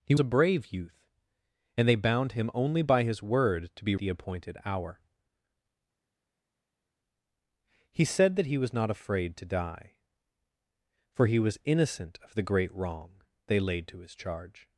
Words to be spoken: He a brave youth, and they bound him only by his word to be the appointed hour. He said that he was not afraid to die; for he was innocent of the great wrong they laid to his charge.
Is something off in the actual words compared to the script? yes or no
no